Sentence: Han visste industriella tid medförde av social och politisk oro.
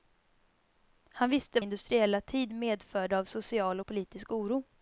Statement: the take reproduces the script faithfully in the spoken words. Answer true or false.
true